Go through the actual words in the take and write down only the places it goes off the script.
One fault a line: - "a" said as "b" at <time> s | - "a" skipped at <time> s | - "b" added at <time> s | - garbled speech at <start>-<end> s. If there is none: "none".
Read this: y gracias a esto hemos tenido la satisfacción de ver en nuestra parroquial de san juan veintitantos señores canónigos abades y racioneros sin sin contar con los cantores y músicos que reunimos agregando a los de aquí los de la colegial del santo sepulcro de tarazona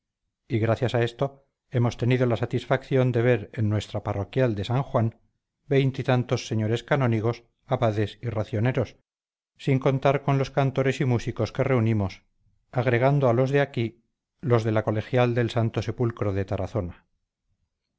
- "sin" skipped at 9.8 s